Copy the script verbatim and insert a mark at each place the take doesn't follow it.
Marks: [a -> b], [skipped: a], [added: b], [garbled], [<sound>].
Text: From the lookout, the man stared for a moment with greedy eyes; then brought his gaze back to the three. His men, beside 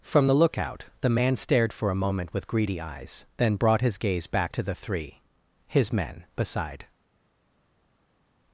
From the lookout, the man stared for a moment with greedy eyes; then brought his gaze back to the three. His men, beside